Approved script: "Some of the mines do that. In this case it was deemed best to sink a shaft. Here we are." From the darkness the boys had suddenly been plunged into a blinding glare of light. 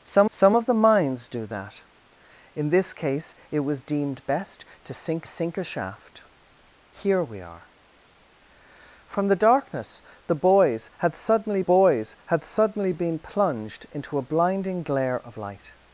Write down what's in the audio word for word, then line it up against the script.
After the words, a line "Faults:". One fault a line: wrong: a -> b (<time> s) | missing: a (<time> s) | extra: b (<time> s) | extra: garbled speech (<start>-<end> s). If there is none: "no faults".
"Some some of the mines do that. In this case it was deemed best to sink sink a shaft. Here we are." From the darkness the boys had suddenly boys had suddenly been plunged into a blinding glare of light.
Faults:
extra: some (0.3 s)
extra: sink (5.2 s)
extra: boys had suddenly (11.6 s)